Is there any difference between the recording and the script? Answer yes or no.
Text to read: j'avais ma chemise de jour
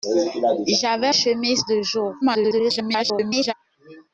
yes